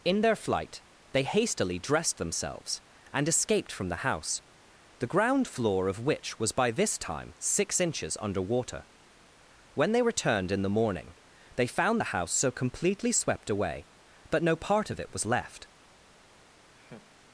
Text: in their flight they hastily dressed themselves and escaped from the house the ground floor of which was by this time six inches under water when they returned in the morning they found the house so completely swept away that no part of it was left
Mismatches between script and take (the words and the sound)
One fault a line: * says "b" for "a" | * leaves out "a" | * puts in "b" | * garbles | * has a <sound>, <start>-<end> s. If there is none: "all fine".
* says "but" for "that"
* has a laugh, 16.7-17.1 s